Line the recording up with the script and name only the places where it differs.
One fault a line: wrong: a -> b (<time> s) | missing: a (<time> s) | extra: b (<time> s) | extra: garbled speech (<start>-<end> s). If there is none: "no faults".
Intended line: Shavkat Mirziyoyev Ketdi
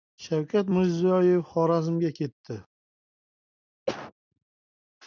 extra: Xorazmga (1.5 s)